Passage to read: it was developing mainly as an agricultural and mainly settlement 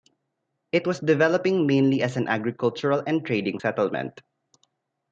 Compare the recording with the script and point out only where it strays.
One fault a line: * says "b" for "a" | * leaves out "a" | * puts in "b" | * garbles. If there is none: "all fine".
* says "trading" for "mainly"